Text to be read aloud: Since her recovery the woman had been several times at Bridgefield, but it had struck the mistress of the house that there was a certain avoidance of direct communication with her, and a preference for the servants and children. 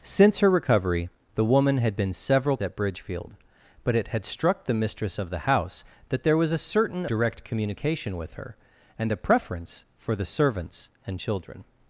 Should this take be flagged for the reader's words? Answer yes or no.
yes